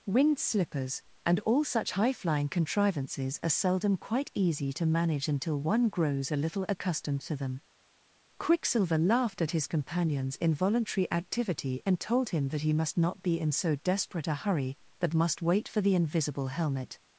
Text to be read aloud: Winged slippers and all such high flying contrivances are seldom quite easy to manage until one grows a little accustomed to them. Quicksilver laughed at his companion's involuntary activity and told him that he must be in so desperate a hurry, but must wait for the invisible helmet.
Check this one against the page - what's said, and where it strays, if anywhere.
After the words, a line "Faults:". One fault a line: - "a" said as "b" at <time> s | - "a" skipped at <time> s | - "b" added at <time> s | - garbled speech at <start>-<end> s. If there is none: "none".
Winged slippers and all such high flying contrivances are seldom quite easy to manage until one grows a little accustomed to them. Quicksilver laughed at his companion's involuntary activity and told him that he must not be in so desperate a hurry, but must wait for the invisible helmet.
Faults:
- "not" added at 13.0 s